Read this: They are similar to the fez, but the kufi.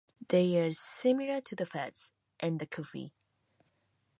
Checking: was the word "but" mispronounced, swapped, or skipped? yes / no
yes